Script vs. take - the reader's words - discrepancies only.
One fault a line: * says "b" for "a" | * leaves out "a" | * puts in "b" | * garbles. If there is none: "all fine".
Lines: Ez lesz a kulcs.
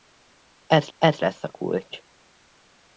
* puts in "ez"